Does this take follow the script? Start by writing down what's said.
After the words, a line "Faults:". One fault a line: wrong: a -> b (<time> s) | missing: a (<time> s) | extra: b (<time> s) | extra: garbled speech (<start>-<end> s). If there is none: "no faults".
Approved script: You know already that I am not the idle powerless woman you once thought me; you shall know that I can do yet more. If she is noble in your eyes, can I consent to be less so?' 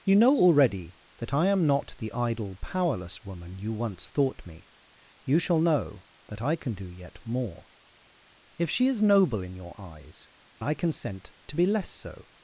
You know already that I am not the idle powerless woman you once thought me; you shall know that I can do yet more. If she is noble in your eyes, I consent to be less so?'
Faults:
missing: can (10.3 s)